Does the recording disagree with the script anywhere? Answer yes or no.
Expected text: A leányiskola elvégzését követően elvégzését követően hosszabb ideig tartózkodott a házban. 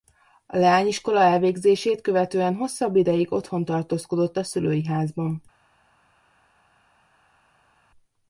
yes